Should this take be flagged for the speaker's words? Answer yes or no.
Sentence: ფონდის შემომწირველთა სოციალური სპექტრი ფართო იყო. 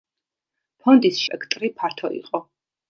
yes